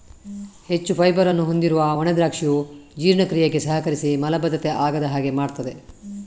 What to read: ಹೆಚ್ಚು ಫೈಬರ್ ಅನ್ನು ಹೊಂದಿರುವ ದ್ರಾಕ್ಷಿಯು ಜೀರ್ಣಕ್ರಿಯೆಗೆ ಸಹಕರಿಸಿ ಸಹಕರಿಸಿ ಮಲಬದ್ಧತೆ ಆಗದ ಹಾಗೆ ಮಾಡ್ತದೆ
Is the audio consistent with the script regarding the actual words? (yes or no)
no